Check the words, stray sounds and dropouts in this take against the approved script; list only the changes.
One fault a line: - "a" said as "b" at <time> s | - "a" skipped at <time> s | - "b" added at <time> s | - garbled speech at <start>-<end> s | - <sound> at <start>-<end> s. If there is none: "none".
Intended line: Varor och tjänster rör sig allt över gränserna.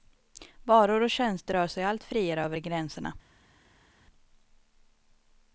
- "friare" added at 2.0 s